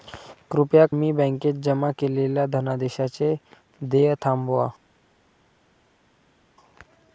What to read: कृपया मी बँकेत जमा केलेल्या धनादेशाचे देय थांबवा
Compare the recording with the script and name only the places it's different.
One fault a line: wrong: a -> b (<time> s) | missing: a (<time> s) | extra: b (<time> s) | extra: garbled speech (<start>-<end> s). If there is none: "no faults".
no faults